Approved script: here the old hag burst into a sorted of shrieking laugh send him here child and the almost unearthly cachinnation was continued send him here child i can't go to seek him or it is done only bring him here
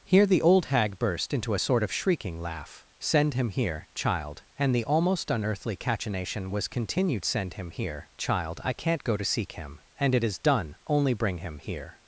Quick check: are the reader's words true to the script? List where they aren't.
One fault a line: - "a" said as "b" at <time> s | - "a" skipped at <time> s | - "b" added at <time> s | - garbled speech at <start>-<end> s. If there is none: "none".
- "sorted" said as "sort" at 1.6 s
- "or" said as "and" at 10.0 s